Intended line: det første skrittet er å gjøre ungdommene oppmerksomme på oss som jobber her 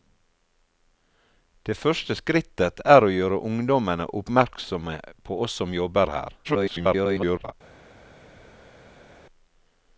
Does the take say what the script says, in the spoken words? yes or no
no